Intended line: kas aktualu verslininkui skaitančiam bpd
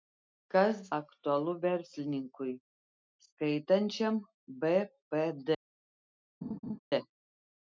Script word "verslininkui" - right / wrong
right